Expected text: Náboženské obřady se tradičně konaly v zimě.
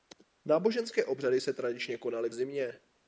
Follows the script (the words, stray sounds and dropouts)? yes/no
yes